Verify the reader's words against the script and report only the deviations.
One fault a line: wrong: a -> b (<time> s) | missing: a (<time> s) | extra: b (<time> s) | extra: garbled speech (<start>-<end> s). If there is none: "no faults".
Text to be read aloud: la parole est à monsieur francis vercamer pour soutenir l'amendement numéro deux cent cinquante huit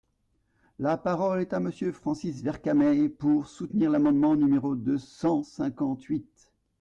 no faults